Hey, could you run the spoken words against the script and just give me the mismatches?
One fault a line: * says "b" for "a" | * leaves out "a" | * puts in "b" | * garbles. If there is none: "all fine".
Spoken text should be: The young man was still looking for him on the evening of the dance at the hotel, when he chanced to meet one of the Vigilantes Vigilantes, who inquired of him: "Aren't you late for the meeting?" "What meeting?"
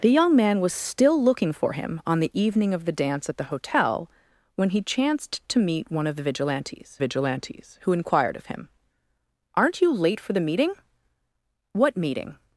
all fine